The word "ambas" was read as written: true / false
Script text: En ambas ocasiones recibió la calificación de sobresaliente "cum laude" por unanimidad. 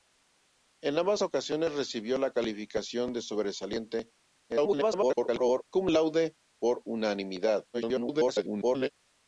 true